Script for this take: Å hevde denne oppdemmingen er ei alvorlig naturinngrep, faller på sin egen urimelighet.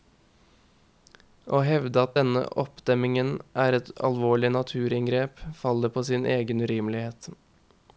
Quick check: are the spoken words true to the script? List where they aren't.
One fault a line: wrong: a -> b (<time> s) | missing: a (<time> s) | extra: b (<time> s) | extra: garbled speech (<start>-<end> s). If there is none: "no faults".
extra: at (2.0 s)
wrong: ei -> et (3.8 s)